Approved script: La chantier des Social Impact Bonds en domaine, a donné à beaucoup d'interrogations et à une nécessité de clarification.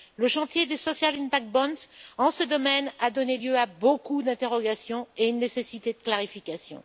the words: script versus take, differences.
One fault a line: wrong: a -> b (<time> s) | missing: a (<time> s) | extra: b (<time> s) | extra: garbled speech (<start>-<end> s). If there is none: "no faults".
wrong: La -> Le (0.1 s)
extra: ce (2.3 s)
extra: lieu (3.3 s)